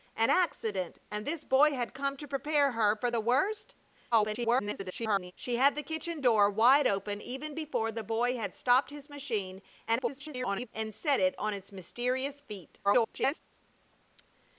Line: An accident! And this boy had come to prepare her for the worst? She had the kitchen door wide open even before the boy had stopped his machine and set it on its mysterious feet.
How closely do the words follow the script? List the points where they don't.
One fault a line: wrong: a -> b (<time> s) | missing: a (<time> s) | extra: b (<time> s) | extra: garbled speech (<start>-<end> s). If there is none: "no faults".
extra: garbled speech (4.1-5.3 s)
extra: garbled speech (9.9-10.7 s)
extra: garbled speech (12.8-13.4 s)